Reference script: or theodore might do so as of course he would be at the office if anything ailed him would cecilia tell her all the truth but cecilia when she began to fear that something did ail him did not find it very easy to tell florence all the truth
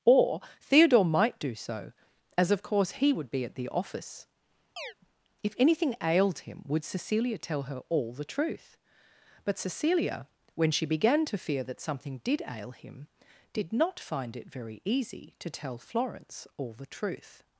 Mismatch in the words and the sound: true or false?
true